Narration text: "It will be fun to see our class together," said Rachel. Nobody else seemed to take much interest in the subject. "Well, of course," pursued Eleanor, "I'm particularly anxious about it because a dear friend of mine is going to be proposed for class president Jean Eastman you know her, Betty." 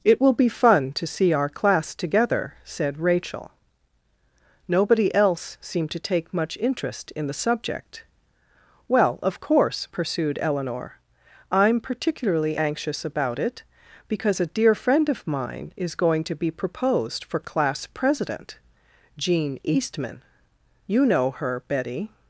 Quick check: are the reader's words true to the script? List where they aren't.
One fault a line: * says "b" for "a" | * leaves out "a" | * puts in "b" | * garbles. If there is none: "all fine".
all fine